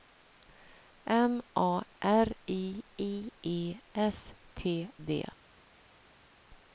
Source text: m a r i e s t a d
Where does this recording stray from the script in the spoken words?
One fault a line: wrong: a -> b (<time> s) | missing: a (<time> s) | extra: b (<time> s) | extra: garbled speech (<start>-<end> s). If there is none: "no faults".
extra: i (3.0 s)
missing: a (4.9 s)